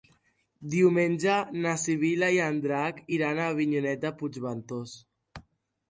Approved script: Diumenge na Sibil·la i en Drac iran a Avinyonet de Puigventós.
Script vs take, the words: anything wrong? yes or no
no